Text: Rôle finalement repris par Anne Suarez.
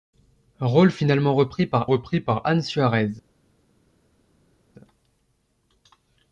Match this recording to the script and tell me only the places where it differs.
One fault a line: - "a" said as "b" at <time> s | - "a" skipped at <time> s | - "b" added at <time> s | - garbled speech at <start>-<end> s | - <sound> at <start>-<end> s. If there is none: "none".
- "repris par" added at 1.9 s